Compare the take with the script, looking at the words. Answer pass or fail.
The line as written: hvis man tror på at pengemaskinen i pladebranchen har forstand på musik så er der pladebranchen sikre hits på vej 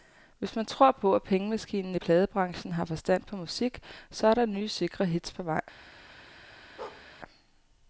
fail